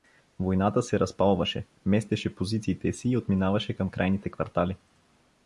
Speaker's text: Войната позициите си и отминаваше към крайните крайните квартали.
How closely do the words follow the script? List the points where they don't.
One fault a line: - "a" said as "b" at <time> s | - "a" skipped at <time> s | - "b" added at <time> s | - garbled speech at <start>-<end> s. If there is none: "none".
- "се разпалваше местеше" added at 0.8 s
- "крайните" skipped at 4.3 s